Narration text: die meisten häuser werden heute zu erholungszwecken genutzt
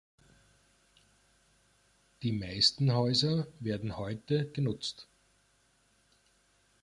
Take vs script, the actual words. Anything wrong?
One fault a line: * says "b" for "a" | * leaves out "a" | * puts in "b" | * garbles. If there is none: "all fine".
* leaves out "zu erholungszwecken"